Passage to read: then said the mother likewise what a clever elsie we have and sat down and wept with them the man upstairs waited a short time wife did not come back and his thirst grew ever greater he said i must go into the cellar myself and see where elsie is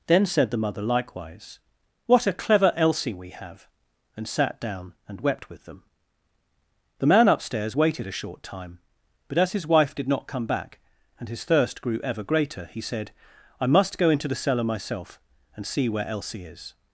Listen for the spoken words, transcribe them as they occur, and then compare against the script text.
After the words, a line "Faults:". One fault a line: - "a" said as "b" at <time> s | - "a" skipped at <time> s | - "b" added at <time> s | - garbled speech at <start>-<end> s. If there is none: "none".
then said the mother likewise what a clever elsie we have and sat down and wept with them the man upstairs waited a short time but as his wife did not come back and his thirst grew ever greater he said i must go into the cellar myself and see where elsie is
Faults:
- "but as his" added at 9.3 s